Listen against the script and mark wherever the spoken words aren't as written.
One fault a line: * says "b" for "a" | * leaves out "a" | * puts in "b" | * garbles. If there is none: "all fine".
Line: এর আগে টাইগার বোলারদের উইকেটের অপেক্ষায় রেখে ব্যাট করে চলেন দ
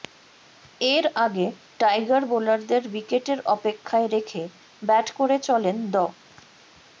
all fine